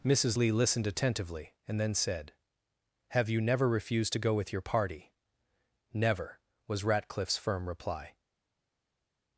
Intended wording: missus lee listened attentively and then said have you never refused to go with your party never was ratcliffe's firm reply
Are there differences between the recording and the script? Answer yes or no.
no